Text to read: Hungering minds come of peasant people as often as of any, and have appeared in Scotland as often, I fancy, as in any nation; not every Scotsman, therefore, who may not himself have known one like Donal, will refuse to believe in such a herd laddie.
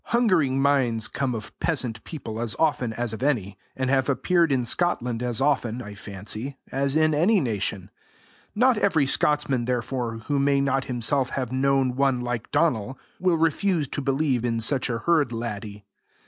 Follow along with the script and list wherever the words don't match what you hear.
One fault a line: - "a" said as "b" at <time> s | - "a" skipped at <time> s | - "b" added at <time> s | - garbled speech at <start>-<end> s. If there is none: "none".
none